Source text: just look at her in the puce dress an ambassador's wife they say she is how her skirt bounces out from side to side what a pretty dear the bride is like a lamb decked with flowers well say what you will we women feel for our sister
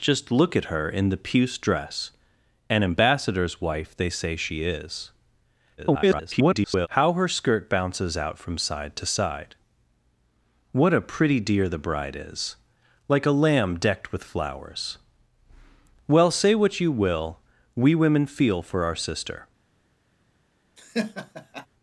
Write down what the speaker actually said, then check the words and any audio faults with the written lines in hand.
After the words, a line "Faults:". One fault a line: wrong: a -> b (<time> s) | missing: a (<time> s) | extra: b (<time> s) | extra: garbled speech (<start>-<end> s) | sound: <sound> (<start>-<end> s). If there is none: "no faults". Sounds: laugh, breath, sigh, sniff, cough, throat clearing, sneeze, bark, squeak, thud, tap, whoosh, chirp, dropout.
just look at her in the puce dress an ambassador's wife they say she is [garbled] how her skirt bounces out from side to side what a pretty dear the bride is like a lamb decked with flowers well say what you will we women feel for our sister
Faults:
extra: garbled speech (5.8-6.9 s)
sound: laugh (20.8-21.7 s)